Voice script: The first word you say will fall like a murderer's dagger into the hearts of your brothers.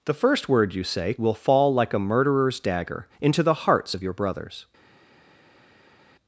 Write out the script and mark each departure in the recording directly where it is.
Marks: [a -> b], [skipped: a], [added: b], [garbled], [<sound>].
The first word you say will fall like a murderer's dagger into the hearts of your brothers.